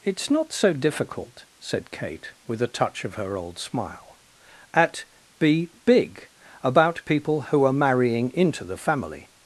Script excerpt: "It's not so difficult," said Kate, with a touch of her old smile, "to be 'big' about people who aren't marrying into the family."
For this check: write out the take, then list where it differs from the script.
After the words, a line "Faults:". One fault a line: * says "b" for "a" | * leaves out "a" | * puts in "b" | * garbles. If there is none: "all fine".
"It's not so difficult," said Kate, with a touch of her old smile, "at be 'big' about people who are marrying into the family."
Faults:
* says "at" for "to"
* says "are" for "aren't"